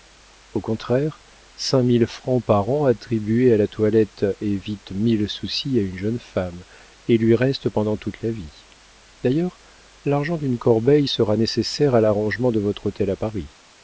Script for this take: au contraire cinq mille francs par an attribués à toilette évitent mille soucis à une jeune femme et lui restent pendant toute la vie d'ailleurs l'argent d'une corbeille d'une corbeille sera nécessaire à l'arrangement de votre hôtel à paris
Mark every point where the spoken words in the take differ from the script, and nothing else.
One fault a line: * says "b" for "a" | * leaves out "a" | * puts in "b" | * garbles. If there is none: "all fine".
* puts in "la"
* leaves out "d'une corbeille"